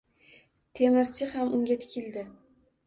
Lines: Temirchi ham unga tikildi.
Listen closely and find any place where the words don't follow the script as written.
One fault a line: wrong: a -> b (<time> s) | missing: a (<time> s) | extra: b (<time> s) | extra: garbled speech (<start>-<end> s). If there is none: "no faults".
no faults